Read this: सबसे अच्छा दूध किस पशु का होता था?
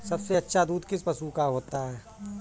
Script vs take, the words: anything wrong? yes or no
yes